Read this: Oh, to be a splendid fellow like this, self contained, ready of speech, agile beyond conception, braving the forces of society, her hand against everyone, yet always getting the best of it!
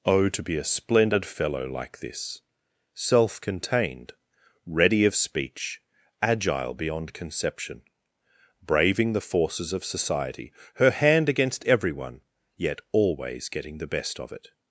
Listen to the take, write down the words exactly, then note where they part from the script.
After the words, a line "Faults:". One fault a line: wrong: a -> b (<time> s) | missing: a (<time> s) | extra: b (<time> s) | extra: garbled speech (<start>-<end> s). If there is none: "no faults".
Oh, to be a splendid fellow like this, self contained, ready of speech, agile beyond conception, braving the forces of society, her hand against everyone, yet always getting the best of it!
Faults:
no faults